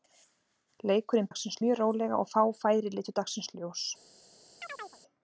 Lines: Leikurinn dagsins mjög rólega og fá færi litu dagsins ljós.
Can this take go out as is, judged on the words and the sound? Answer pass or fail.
fail